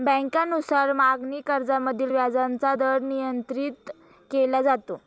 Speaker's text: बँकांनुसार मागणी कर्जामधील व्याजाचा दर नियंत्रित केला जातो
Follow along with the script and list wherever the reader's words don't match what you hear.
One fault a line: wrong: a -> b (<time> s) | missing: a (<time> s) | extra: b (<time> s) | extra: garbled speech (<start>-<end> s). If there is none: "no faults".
no faults